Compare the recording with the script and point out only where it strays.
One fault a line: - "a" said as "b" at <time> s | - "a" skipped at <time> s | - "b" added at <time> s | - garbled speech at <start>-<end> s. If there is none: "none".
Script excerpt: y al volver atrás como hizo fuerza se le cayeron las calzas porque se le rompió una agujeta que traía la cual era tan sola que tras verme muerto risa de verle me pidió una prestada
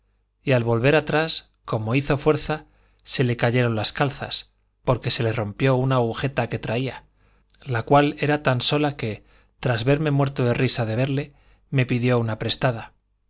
- "de" added at 10.4 s